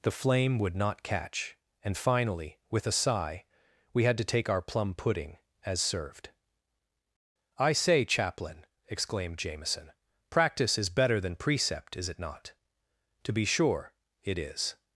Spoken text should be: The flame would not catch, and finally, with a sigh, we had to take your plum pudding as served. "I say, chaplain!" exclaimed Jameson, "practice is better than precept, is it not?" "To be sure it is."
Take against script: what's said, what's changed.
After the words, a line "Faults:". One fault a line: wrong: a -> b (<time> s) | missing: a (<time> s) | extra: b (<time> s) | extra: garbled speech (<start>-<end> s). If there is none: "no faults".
The flame would not catch, and finally, with a sigh, we had to take our plum pudding as served. "I say, chaplain!" exclaimed Jameson, "practice is better than precept, is it not?" "To be sure it is."
Faults:
wrong: your -> our (4.5 s)